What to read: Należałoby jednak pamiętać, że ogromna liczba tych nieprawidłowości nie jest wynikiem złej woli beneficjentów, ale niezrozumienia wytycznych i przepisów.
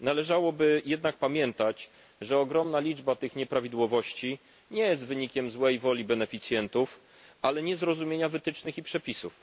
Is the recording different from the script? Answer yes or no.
no